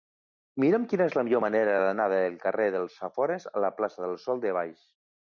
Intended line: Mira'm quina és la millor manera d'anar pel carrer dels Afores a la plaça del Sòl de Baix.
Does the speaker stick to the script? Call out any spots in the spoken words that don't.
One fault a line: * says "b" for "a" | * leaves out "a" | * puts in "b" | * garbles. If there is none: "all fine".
* says "del" for "pel"